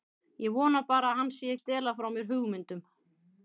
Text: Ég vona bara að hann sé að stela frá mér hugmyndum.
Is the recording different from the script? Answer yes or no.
no